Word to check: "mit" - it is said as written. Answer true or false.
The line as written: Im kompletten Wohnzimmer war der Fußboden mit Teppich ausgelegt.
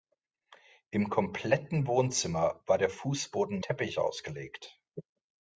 false